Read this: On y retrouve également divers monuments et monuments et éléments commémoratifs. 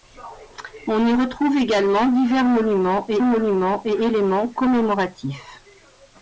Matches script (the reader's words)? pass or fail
pass